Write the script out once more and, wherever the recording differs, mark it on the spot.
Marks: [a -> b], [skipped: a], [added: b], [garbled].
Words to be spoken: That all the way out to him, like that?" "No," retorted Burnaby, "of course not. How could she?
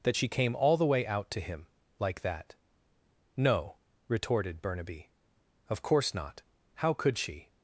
That [added: she came] all the way out to him, like that?" "No," retorted Burnaby, "of course not. How could she?